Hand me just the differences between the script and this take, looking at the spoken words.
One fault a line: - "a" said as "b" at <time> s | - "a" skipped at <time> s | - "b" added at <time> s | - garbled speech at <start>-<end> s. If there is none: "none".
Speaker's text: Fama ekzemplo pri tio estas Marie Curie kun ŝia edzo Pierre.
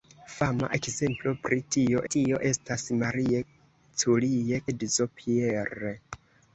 - "tio" added at 2.1 s
- "kun ŝia" skipped at 4.6 s